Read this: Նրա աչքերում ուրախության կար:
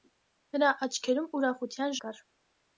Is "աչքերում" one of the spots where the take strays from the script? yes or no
no